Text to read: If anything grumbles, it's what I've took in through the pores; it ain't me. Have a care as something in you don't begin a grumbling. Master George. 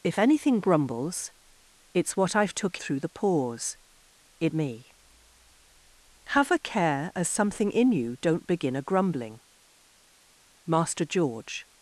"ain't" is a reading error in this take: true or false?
true